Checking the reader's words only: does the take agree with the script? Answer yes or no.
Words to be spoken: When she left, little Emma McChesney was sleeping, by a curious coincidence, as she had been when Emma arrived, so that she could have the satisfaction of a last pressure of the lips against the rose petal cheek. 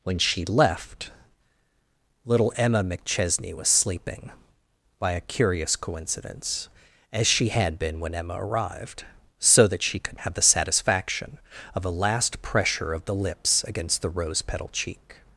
yes